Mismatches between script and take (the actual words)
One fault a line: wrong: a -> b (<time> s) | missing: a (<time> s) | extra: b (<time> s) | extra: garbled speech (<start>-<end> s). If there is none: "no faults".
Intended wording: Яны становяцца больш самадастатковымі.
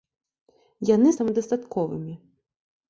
missing: становяцца больш (1.1 s)